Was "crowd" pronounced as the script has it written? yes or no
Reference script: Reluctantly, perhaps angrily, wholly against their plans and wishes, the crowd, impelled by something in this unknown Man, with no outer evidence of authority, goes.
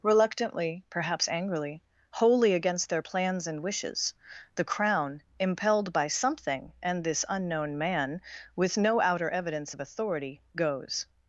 no